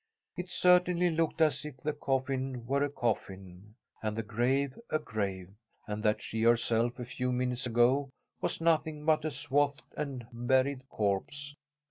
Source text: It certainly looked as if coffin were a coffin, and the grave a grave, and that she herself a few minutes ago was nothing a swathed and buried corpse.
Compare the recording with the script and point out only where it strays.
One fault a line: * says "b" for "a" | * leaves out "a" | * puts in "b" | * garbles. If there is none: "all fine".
* puts in "the"
* puts in "but"